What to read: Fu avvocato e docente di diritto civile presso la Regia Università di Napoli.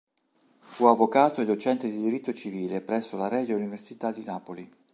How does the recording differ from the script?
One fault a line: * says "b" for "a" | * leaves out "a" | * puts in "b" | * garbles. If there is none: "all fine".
all fine